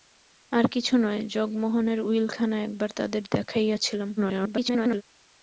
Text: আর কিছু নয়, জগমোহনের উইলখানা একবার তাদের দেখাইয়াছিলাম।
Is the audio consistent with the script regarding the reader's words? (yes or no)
no